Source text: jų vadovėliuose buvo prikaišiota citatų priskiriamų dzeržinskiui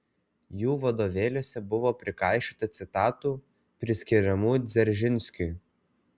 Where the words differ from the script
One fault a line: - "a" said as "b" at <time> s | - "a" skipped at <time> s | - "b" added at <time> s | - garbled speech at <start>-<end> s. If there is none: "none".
none